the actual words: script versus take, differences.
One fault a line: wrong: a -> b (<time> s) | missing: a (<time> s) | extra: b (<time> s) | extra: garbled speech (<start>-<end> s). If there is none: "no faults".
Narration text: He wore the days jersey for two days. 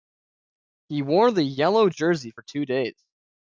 wrong: days -> yellow (1.4 s)